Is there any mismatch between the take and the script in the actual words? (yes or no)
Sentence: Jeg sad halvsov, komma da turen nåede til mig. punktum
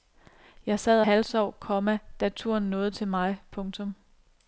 no